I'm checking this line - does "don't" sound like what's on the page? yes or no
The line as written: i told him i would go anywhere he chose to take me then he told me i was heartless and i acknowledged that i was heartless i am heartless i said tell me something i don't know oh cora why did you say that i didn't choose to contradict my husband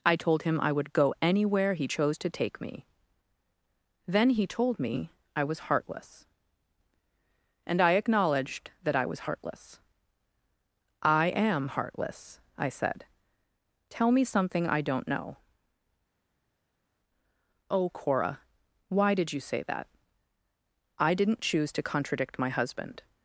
yes